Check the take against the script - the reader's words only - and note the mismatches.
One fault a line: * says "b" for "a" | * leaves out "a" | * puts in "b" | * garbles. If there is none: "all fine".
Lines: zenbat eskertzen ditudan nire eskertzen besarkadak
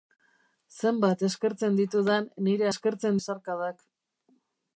all fine